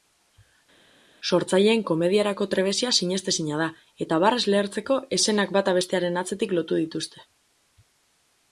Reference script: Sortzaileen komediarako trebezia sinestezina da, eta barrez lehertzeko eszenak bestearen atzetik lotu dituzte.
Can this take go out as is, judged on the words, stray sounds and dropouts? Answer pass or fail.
fail